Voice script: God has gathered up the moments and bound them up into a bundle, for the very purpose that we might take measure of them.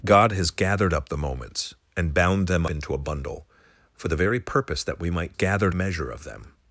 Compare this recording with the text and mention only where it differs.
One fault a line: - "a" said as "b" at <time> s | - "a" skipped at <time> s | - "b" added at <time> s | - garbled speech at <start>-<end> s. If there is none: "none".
- "up" skipped at 2.6 s
- "take" said as "gathered" at 5.3 s